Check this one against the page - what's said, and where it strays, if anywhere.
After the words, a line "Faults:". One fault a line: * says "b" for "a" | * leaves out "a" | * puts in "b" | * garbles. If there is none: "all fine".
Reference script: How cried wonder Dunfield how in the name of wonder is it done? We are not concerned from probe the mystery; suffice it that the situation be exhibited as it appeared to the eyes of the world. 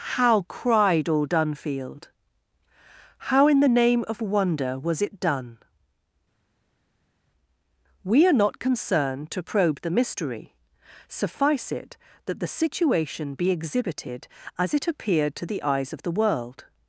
How cried all Dunfield how in the name of wonder was it done? We are not concerned to probe the mystery; suffice it that the situation be exhibited as it appeared to the eyes of the world.
Faults:
* says "all" for "wonder"
* says "was" for "is"
* says "to" for "from"